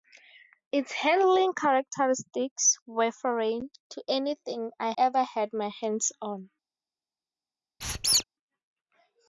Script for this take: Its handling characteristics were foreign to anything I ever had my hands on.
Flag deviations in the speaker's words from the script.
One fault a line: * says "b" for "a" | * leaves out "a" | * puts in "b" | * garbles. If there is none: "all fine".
all fine